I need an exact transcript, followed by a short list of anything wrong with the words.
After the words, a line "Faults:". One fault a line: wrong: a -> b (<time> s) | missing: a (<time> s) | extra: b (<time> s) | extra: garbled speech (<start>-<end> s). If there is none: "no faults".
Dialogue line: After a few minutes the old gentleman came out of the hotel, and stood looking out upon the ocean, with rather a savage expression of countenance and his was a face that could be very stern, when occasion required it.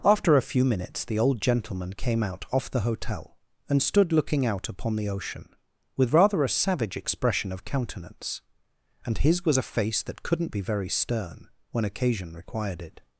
After a few minutes the old gentleman came out off the hotel, and stood looking out upon the ocean, with rather a savage expression of countenance and his was a face that couldn't be very stern, when occasion required it.
Faults:
wrong: of -> off (2.5 s)
wrong: could -> couldn't (10.2 s)